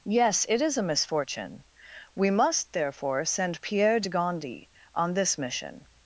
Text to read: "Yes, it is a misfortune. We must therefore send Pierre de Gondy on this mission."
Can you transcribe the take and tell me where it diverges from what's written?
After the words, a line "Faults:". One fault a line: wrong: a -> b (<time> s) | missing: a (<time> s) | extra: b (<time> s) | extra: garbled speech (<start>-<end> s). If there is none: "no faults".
"Yes, it is a misfortune. We must therefore send Pierre de Gondy on this mission."
Faults:
no faults